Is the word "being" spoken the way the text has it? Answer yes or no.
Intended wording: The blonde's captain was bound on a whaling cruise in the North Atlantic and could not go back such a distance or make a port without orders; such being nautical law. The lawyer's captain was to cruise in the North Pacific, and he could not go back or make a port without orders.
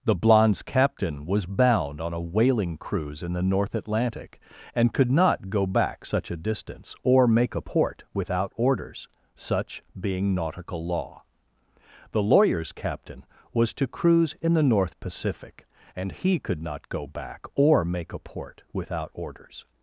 yes